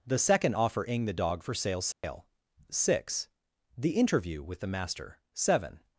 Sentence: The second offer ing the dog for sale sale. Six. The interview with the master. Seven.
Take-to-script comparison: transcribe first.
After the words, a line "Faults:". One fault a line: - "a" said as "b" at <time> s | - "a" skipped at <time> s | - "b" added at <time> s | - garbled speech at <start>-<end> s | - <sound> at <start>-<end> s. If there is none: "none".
The second offer ing the dog for sale sale. Six. The interview with the master. Seven.
Faults:
- dropout at 1.9-2.0 s